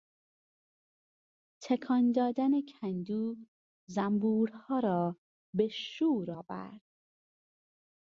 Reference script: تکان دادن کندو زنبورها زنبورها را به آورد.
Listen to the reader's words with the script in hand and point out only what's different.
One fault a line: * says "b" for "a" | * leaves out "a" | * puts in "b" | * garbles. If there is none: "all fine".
* leaves out "زنبورها"
* puts in "شور"